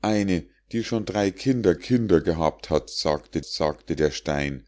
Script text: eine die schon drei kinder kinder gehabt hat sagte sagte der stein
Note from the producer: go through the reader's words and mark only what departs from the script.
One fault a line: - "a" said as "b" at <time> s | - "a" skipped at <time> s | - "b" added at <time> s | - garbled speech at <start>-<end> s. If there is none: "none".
none